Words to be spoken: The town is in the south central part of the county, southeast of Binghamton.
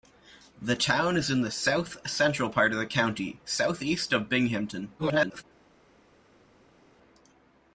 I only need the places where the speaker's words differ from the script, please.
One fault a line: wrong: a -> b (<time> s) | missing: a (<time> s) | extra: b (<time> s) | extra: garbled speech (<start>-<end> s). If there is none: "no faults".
extra: garbled speech (5.0-5.4 s)